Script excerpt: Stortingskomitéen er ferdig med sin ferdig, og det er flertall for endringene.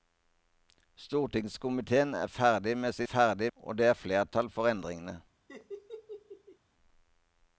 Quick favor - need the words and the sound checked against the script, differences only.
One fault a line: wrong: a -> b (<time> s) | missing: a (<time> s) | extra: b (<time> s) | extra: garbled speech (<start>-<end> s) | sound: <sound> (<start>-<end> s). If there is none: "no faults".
sound: laugh (5.5-6.6 s)